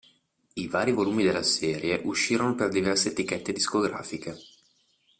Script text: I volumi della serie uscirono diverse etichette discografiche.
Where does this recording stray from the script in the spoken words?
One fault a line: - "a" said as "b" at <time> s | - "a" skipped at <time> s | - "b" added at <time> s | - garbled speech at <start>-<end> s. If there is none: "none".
- "vari" added at 0.7 s
- "per" added at 2.5 s